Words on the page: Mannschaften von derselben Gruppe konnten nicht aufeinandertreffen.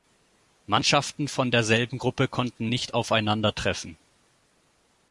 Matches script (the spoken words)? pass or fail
pass